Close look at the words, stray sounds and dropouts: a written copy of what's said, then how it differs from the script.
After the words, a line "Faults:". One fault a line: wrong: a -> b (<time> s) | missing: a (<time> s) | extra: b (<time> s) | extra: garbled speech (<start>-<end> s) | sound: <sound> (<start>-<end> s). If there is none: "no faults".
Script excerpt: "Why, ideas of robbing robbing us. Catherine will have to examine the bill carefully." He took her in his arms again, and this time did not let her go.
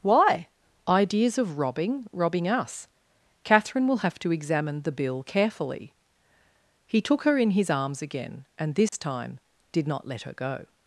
"Why, ideas of robbing robbing us. Catherine will have to examine the bill carefully." He took her in his arms again, and this time did not let her go.
Faults:
sound: dropout (8.9-8.9 s)